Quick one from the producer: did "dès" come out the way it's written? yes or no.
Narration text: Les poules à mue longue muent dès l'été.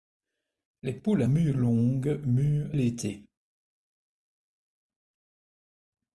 no